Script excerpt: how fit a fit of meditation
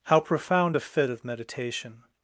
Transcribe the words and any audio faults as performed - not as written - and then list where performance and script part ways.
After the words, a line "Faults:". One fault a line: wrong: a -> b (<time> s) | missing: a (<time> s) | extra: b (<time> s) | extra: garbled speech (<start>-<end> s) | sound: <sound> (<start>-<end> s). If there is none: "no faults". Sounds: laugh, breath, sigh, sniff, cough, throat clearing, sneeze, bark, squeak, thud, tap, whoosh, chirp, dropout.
how profound a fit of meditation
Faults:
wrong: fit -> profound (0.2 s)